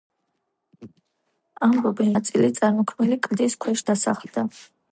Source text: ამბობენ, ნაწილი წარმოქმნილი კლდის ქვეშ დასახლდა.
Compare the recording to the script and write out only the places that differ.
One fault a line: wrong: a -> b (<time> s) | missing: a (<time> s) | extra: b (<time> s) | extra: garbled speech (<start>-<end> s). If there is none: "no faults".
no faults